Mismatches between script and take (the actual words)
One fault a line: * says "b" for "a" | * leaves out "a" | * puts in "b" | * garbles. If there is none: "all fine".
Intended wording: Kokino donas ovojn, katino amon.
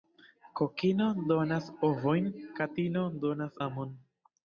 * puts in "donas"